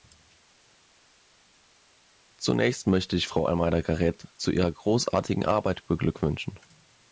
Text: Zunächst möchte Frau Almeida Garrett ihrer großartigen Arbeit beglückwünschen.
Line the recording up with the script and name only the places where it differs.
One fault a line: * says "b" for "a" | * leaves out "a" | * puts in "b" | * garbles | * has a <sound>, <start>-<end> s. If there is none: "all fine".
* puts in "ich"
* puts in "zu"